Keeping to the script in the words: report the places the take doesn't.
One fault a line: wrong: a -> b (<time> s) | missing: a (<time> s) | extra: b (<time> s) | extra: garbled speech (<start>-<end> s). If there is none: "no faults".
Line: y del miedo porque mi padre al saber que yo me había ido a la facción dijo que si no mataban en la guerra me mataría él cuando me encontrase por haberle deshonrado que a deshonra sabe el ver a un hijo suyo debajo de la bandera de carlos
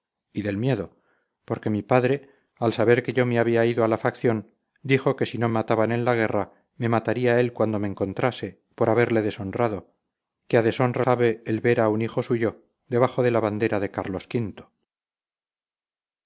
no faults